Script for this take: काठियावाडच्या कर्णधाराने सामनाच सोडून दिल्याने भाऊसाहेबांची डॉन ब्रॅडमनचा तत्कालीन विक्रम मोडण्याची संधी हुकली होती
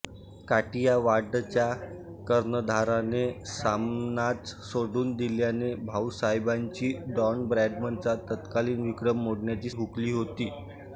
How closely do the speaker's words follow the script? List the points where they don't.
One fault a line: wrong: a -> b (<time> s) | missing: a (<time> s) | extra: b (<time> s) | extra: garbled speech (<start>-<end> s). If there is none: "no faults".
missing: संधी (9.7 s)